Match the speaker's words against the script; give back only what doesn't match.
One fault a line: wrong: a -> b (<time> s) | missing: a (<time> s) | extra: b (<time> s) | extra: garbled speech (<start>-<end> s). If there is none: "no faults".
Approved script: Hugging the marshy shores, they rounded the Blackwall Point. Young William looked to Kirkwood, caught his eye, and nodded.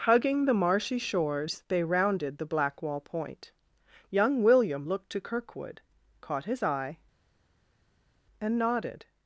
no faults